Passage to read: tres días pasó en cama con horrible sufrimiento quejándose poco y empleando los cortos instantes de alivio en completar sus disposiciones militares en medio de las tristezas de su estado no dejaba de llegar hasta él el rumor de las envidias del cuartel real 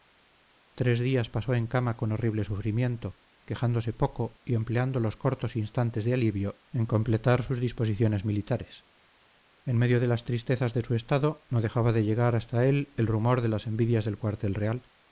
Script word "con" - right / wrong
right